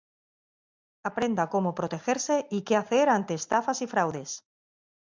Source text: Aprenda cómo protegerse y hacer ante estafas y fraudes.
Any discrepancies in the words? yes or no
yes